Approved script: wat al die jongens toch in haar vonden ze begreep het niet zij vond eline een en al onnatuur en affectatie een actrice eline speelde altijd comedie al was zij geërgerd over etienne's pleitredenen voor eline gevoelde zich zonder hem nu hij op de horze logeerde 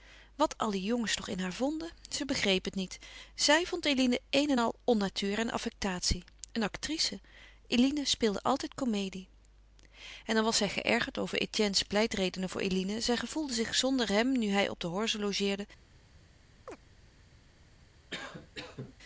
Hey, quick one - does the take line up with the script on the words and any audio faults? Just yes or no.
no